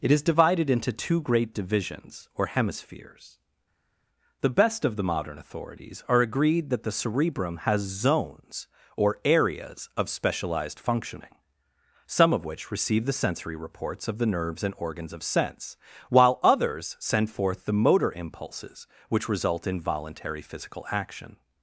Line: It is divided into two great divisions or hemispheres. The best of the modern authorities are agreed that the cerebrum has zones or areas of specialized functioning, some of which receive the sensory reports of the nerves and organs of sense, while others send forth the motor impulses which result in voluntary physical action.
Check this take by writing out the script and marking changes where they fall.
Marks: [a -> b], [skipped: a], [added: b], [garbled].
It is divided into two great divisions or hemispheres. The best of the modern authorities are agreed that the cerebrum has zones or areas of specialized functioning, some of which receive the sensory reports of the nerves and organs of sense, while others send forth the motor impulses which result in voluntary physical action.